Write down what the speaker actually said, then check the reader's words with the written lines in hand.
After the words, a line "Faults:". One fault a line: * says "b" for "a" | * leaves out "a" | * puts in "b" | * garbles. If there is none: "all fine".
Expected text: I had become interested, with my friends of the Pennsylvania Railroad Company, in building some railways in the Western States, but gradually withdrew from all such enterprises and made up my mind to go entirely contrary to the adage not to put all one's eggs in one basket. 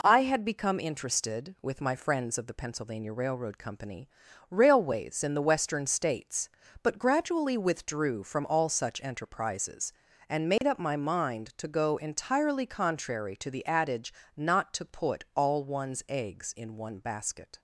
I had become interested, with my friends of the Pennsylvania Railroad Company, railways in the Western States, but gradually withdrew from all such enterprises and made up my mind to go entirely contrary to the adage not to put all one's eggs in one basket.
Faults:
* leaves out "in building some"